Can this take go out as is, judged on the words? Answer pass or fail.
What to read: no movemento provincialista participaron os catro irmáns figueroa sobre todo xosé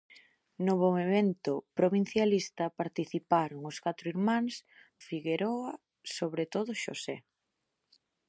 pass